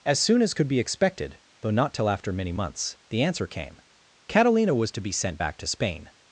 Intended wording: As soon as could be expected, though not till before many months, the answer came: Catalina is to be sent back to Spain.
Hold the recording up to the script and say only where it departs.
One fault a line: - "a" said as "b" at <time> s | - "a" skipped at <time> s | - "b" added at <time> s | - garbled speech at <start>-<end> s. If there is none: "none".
- "before" said as "after" at 2.1 s
- "is" said as "was" at 4.7 s